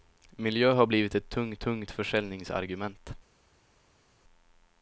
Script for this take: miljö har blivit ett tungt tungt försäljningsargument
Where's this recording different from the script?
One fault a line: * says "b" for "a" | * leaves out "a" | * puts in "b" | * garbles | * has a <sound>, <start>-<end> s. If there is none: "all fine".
all fine